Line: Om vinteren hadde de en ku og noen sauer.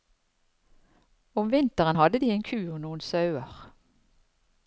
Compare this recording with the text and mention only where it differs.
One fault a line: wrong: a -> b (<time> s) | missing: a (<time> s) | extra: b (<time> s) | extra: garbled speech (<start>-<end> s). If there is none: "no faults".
no faults